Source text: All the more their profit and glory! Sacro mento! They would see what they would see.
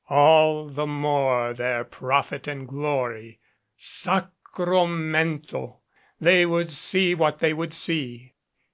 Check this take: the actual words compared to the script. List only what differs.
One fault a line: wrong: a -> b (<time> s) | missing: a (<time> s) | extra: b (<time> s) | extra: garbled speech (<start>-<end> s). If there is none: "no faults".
no faults